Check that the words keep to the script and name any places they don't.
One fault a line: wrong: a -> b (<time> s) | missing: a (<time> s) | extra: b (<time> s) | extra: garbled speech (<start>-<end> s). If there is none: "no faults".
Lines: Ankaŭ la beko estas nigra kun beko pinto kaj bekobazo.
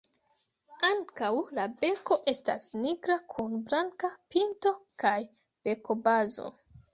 wrong: beko -> blanka (3.7 s)